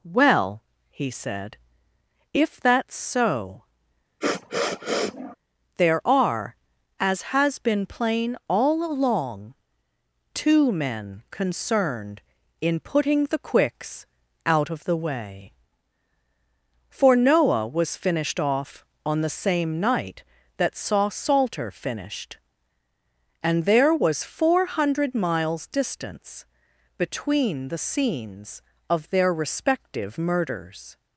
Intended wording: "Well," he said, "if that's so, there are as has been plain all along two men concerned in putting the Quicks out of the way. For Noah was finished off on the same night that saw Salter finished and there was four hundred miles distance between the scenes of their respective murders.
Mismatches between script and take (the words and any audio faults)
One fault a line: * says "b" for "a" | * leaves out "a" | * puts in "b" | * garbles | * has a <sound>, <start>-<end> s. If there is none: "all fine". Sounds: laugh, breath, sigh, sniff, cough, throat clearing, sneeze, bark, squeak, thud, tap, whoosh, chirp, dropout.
* has a sniff, 4.2-5.4 s